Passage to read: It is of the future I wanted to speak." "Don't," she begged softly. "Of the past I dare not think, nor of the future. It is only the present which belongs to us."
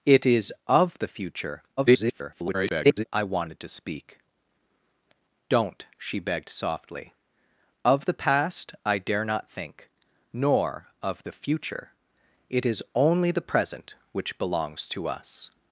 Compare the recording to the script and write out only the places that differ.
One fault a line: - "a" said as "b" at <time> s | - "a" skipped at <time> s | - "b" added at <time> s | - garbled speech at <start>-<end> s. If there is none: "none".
- garbled speech at 1.8-3.0 s